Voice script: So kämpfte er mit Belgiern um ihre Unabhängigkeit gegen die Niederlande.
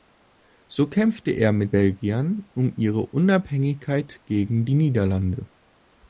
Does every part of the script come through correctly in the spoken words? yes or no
yes